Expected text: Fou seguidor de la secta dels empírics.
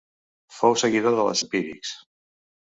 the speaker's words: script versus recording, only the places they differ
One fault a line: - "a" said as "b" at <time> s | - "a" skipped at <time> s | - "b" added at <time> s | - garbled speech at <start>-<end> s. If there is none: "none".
- "secta dels" skipped at 1.3 s